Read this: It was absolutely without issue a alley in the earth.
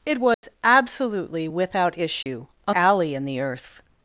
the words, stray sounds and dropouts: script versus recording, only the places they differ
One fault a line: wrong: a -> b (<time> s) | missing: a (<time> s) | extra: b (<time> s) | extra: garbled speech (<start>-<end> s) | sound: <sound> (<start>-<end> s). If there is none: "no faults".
sound: dropout (0.3-0.4 s)
sound: dropout (2.2-2.3 s)